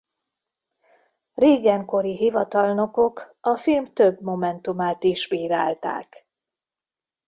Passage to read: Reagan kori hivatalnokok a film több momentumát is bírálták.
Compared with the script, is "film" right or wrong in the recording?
right